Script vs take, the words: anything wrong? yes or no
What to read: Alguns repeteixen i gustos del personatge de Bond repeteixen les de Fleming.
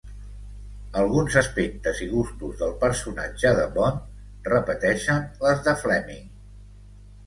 yes